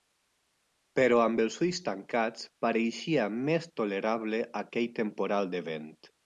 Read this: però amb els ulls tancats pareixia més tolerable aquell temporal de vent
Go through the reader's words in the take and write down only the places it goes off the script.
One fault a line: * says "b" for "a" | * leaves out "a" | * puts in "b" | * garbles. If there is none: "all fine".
all fine